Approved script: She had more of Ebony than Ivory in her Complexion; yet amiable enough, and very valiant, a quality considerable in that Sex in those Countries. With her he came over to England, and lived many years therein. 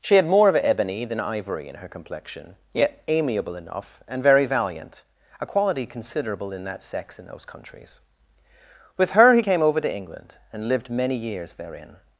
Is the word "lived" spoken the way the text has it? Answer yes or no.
yes